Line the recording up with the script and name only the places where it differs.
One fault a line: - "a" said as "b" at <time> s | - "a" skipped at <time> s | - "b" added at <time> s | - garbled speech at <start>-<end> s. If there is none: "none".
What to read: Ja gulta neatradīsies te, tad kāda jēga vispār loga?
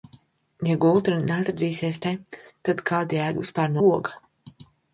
none